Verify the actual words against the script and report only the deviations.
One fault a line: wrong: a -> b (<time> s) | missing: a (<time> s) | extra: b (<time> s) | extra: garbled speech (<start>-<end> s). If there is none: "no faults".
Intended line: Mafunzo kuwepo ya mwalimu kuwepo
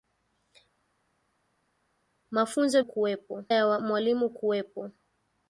no faults